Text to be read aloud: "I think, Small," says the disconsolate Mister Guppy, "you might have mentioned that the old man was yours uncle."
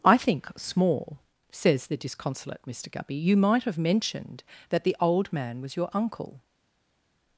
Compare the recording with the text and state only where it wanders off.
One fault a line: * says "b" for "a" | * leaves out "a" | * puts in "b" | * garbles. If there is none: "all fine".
* says "your" for "yours"